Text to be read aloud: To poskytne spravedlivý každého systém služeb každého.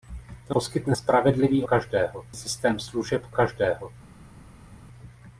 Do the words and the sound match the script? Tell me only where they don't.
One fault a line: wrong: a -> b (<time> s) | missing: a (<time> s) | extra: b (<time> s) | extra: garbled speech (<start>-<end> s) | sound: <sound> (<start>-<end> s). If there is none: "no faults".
no faults